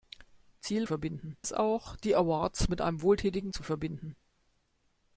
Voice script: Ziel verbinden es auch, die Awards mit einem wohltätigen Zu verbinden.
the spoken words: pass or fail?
pass